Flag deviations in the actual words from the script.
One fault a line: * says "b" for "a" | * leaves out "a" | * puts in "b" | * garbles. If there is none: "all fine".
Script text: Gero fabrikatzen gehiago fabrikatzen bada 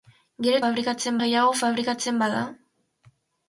all fine